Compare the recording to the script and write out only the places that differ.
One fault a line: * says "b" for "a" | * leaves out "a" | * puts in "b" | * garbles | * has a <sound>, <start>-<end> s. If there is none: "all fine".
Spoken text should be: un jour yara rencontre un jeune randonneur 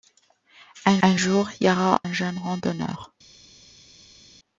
* puts in "un"
* leaves out "rencontre"